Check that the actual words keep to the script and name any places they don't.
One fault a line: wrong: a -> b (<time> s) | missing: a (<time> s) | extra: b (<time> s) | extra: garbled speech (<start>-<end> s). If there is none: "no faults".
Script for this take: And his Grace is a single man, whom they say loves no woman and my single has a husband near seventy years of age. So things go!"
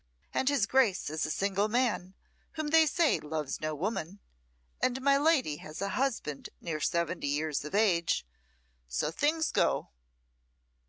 wrong: single -> lady (5.2 s)